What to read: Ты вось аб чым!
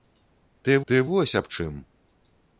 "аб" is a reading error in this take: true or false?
false